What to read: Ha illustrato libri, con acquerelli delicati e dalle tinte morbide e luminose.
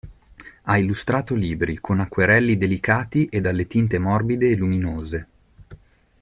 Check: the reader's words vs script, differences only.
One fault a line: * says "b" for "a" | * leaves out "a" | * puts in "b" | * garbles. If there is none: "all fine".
all fine